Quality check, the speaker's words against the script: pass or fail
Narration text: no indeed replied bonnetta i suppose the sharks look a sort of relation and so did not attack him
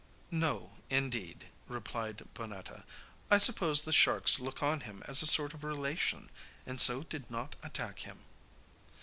fail